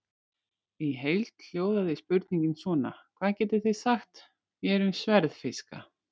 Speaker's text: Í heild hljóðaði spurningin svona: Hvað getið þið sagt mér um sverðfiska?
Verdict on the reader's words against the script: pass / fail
pass